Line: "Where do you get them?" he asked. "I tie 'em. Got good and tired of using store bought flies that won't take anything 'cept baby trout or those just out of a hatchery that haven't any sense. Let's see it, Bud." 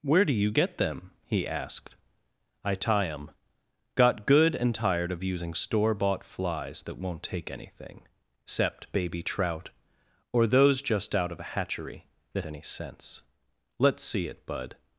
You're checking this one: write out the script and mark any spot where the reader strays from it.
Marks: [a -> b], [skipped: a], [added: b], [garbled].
"Where do you get them?" he asked. "I tie 'em. Got good and tired of using store bought flies that won't take anything 'cept baby trout or those just out of a hatchery that [skipped: haven't] any sense. Let's see it, Bud."